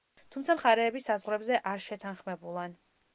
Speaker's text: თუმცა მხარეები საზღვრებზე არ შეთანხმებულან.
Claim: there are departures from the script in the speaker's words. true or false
false